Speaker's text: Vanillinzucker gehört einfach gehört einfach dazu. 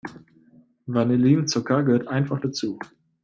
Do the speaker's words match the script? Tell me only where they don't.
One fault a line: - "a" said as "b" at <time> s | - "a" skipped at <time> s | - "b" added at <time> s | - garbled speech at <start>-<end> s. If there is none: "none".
- "gehört einfach" skipped at 2.4 s